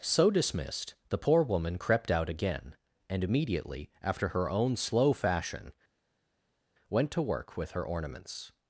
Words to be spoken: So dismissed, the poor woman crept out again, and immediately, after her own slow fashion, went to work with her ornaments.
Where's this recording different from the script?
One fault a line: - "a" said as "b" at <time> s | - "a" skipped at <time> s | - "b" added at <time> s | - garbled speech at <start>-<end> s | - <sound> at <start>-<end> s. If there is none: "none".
none